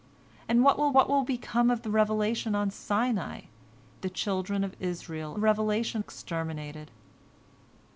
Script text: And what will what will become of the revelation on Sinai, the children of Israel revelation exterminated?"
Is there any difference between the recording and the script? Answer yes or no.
no